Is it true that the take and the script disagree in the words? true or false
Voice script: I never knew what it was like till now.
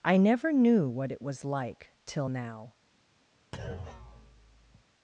false